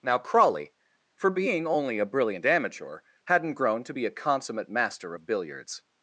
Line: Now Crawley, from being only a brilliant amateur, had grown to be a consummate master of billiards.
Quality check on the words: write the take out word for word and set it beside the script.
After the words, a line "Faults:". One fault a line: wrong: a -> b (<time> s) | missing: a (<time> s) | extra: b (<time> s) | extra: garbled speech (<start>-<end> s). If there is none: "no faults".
Now Crawley, for being only a brilliant amateur, hadn't grown to be a consummate master of billiards.
Faults:
wrong: from -> for (1.1 s)
wrong: had -> hadn't (3.2 s)